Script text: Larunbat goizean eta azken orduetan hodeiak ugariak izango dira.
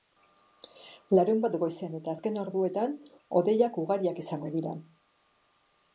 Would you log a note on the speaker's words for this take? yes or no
no